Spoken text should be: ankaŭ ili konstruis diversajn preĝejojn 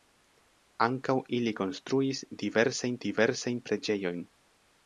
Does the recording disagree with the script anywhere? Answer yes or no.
yes